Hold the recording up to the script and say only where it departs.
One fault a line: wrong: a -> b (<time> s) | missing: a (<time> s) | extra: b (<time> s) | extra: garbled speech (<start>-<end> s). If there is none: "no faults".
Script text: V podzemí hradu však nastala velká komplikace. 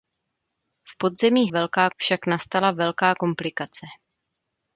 wrong: hradu -> velká (1.5 s)